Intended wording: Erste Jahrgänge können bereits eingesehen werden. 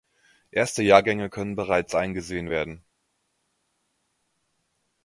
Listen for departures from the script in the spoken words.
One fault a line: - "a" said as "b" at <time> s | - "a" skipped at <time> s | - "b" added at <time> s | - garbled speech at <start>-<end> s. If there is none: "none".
none